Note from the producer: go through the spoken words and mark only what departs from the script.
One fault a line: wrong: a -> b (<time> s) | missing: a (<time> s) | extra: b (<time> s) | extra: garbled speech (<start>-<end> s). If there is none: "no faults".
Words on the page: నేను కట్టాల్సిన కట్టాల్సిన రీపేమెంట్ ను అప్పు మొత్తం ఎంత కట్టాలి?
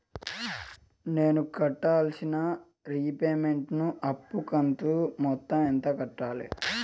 missing: కట్టాల్సిన (2.4 s)
extra: కంతు (4.5 s)